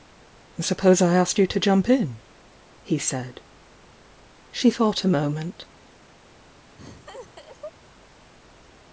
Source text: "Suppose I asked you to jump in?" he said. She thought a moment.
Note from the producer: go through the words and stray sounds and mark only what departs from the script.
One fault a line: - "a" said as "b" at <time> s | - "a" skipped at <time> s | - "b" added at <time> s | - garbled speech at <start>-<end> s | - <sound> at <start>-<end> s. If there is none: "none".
- laugh at 6.8-7.7 s